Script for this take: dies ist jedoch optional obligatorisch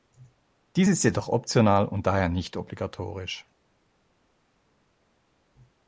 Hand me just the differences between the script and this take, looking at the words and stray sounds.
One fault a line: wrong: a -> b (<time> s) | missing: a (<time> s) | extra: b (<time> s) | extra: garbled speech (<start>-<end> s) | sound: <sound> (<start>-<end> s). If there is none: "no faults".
extra: und daher nicht (1.9 s)